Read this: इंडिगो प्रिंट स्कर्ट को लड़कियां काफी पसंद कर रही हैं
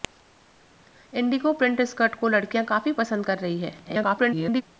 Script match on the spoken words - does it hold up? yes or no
no